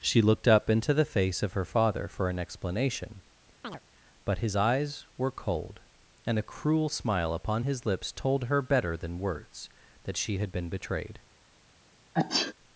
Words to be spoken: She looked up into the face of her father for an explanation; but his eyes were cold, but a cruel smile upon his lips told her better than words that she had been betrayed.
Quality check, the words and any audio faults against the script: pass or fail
fail